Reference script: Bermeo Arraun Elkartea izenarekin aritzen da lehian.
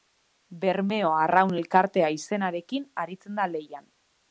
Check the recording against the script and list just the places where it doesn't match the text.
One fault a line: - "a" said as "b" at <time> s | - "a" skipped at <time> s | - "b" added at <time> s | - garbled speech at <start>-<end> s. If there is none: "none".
none